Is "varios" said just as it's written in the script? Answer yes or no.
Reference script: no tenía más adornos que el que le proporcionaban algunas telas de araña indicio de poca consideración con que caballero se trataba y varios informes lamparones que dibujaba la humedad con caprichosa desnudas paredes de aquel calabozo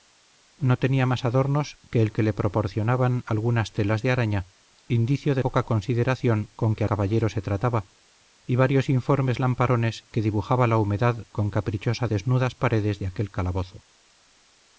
yes